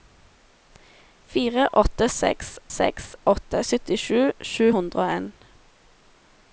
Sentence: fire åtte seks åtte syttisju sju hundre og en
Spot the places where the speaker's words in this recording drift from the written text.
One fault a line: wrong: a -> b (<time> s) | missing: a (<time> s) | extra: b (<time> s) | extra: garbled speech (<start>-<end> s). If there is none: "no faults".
extra: seks (2.7 s)